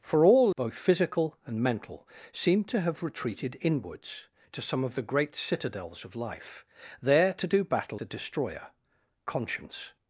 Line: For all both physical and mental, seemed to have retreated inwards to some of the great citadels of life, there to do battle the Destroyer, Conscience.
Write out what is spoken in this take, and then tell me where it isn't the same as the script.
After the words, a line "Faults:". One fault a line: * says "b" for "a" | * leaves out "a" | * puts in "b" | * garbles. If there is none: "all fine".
For all both physical and mental, seemed to have retreated inwards to some of the great citadels of life, there to do battle the Destroyer, Conscience.
Faults:
all fine